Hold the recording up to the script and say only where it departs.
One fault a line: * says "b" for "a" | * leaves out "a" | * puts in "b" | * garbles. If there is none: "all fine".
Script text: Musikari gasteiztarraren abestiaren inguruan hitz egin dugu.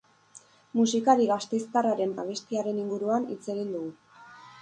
all fine